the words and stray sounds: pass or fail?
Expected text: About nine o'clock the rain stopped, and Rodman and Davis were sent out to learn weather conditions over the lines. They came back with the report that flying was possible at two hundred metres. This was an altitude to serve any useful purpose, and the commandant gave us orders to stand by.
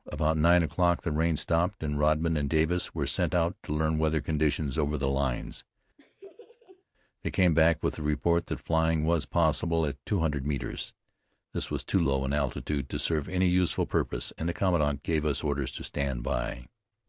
fail